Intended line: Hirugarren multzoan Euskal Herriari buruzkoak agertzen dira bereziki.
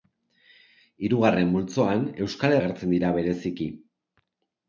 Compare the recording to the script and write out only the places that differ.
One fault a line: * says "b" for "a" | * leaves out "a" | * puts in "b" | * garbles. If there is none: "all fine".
* leaves out "Herriari buruzkoak"